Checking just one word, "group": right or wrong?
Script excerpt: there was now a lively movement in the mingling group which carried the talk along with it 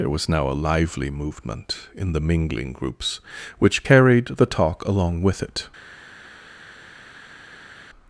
wrong